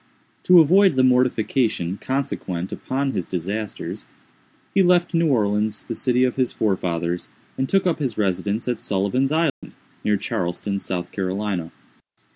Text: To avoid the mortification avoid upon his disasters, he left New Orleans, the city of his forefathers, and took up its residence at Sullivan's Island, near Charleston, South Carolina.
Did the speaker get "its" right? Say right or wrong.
wrong